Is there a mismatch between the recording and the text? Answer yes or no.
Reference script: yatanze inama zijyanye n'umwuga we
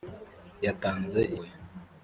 yes